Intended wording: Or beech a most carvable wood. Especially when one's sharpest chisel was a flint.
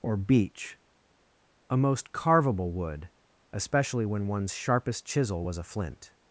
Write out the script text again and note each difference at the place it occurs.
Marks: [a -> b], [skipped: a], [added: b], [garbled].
Or beech a most carvable wood. Especially when one's sharpest chisel was a flint.